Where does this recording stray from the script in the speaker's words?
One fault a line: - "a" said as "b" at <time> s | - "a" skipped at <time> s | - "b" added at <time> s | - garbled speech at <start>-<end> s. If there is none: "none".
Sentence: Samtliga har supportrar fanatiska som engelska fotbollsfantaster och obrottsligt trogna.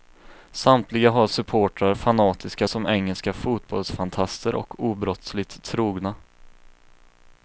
none